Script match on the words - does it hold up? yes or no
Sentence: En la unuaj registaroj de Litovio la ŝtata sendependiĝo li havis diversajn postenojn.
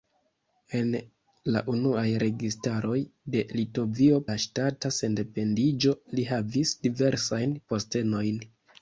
yes